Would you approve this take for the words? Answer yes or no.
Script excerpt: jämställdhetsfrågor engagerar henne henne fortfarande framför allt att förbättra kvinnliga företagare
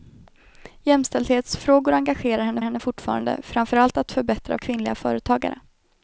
yes